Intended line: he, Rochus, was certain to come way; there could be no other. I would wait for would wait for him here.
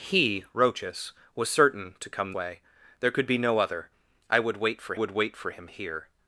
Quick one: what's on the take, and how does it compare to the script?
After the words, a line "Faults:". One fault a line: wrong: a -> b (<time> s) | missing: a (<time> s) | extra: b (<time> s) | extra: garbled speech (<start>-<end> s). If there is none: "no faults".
he, Rochus, was certain to come way; there could be no other. I would wait for would wait for him here.
Faults:
no faults